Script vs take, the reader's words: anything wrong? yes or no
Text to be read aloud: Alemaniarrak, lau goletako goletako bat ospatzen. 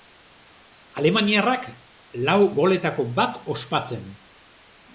yes